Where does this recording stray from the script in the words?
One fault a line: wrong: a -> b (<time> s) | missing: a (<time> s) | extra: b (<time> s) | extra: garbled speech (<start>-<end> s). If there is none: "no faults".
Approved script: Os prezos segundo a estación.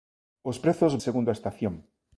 no faults